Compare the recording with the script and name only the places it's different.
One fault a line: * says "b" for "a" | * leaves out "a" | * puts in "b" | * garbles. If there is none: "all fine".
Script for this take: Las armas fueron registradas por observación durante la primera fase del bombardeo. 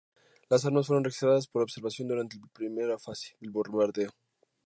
all fine